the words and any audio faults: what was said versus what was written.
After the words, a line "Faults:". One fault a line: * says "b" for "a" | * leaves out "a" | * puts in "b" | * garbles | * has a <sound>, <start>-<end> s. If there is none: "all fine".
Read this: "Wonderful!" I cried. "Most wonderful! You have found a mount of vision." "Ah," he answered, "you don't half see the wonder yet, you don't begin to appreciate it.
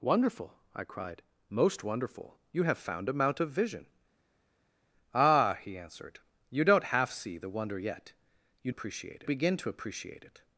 "Wonderful!" I cried. "Most wonderful! You have found a mount of vision." "Ah," he answered, "you don't half see the wonder yet, you appreciate begin to appreciate it.
Faults:
* says "appreciate" for "don't"